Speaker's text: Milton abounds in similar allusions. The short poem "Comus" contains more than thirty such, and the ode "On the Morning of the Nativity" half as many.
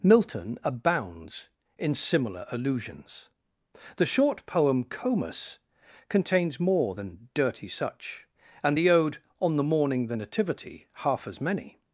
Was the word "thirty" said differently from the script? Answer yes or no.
yes